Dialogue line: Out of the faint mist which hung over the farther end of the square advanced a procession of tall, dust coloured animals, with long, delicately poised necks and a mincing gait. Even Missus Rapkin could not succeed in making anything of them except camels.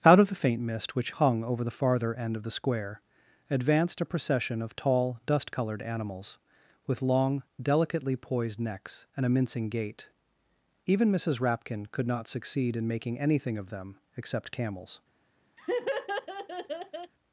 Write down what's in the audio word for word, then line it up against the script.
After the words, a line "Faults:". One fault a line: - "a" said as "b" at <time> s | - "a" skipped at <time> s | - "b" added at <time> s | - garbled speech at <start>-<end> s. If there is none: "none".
Out of the faint mist which hung over the farther end of the square advanced a procession of tall, dust coloured animals, with long, delicately poised necks and a mincing gait. Even Missus Rapkin could not succeed in making anything of them except camels.
Faults:
none